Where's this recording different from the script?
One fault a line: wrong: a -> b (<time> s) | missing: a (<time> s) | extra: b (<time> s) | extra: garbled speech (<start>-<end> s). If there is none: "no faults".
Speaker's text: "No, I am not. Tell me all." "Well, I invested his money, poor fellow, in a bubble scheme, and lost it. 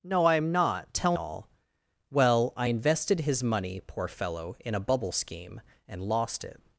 missing: me (1.2 s)